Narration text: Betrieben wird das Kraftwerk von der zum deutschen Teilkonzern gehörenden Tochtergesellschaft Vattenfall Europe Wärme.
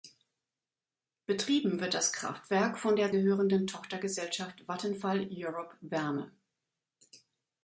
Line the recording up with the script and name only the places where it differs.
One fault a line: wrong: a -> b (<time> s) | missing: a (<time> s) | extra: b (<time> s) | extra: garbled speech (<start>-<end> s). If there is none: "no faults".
missing: zum deutschen Teilkonzern (3.1 s)